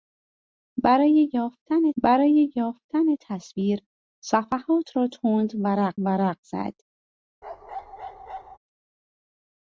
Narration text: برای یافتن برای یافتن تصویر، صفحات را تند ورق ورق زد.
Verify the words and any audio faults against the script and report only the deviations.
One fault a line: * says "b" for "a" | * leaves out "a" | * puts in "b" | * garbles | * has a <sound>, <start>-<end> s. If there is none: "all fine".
* has a bark, 7.4-8.6 s